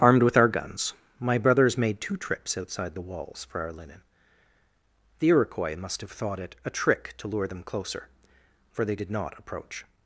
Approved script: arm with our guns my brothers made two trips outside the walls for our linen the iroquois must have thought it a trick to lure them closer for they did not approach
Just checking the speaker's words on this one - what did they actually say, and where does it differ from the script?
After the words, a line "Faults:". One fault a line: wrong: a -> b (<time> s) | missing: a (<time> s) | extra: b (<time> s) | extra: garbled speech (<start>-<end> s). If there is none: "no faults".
armed with our guns my brothers made two trips outside the walls for our linen the iroquois must have thought it a trick to lure them closer for they did not approach
Faults:
wrong: arm -> armed (0.0 s)